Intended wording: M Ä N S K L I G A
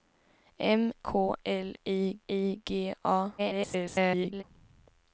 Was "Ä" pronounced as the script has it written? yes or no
no